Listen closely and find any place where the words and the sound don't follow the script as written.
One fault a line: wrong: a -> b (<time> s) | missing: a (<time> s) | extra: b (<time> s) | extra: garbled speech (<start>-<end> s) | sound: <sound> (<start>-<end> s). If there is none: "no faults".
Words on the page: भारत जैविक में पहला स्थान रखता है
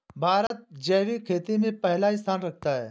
sound: dropout (0.5-0.5 s)
extra: खेती (1.2 s)